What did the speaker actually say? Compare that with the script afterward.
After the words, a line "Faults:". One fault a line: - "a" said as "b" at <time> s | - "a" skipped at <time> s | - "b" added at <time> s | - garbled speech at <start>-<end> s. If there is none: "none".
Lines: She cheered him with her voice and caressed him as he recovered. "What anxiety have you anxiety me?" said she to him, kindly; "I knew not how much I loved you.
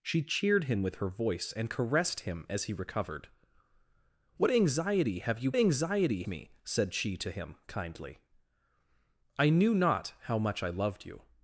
She cheered him with her voice and caressed him as he recovered. "What anxiety have you anxiety me?" said she to him, kindly; "I knew not how much I loved you.
Faults:
none